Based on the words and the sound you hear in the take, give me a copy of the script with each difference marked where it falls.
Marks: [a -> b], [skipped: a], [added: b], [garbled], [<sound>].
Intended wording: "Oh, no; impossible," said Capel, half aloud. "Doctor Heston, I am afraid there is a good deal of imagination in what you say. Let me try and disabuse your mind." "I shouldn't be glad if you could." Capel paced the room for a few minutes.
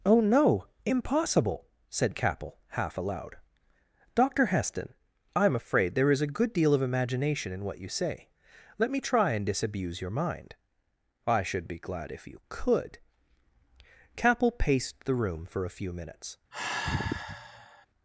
"Oh, no; impossible," said Capel, half aloud. "Doctor Heston, I am afraid there is a good deal of imagination in what you say. Let me try and disabuse your mind." "I [shouldn't -> should] be glad if you could." Capel paced the room for a few minutes. [sigh]